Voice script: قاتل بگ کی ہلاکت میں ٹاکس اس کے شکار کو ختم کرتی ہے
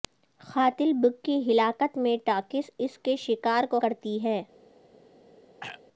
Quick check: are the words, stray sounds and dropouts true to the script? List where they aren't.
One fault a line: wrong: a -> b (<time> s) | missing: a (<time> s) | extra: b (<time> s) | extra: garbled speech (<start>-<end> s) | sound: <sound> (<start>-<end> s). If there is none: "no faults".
missing: ختم (3.8 s)
sound: throat clearing (5.6-5.8 s)